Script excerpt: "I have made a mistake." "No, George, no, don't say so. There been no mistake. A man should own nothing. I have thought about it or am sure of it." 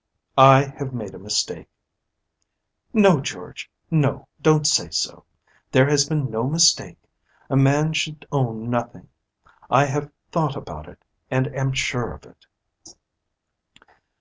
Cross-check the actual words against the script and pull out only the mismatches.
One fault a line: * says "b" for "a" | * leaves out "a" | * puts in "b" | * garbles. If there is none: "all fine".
* puts in "has"
* says "and" for "or"